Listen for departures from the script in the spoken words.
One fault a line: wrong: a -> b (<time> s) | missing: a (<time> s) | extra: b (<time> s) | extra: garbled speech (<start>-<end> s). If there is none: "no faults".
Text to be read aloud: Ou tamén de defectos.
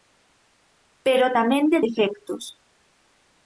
wrong: Ou -> Pero (1.1 s)